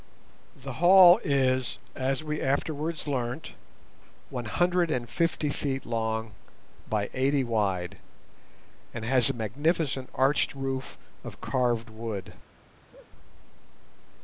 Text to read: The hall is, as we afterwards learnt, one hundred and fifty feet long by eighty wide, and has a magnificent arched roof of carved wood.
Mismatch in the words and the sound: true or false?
true